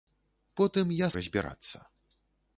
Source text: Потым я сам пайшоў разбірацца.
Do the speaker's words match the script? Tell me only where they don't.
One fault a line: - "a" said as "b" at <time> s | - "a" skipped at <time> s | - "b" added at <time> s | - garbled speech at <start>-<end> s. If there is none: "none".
- "сам пайшоў" skipped at 1.1 s